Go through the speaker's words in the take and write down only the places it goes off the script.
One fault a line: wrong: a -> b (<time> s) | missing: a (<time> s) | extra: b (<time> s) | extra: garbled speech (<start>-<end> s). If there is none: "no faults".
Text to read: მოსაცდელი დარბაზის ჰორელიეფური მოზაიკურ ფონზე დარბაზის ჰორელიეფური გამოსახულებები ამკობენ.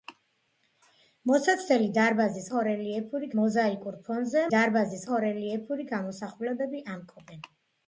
no faults